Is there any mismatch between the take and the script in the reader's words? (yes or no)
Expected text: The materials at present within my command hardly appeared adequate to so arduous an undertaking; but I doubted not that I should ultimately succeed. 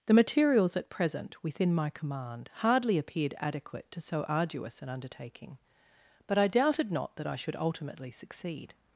no